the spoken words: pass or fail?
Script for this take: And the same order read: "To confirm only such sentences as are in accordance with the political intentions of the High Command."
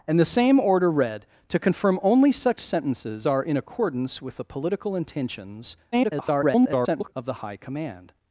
fail